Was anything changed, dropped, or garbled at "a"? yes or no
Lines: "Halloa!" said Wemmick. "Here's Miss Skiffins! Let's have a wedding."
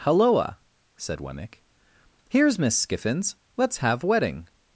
yes